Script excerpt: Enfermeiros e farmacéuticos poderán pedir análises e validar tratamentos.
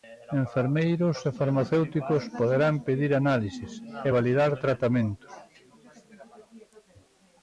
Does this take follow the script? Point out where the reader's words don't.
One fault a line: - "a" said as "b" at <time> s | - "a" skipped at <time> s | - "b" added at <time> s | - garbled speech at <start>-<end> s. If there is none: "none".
none